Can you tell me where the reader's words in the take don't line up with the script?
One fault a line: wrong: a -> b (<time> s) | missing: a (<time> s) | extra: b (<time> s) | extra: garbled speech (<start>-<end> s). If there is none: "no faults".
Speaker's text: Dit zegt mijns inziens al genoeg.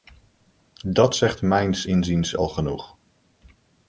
wrong: Dit -> Dat (0.8 s)